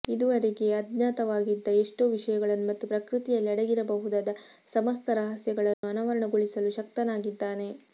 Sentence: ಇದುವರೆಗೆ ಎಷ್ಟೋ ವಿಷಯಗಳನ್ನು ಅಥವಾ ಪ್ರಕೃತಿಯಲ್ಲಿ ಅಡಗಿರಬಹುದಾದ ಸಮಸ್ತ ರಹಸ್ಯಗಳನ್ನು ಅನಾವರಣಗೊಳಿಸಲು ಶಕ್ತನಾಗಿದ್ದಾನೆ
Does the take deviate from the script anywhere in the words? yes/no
yes